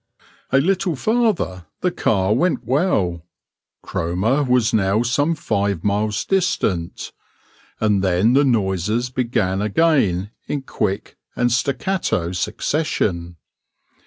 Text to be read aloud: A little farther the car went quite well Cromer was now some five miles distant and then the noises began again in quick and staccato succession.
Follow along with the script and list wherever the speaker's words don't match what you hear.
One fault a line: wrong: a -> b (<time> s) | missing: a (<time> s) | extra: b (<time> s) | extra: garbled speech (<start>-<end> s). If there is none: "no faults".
missing: quite (2.6 s)